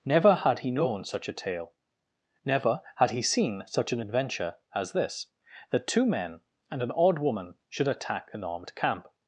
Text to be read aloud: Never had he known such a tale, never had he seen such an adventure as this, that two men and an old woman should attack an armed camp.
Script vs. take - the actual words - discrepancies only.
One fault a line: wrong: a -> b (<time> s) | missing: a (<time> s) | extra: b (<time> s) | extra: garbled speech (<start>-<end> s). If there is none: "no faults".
wrong: old -> odd (6.9 s)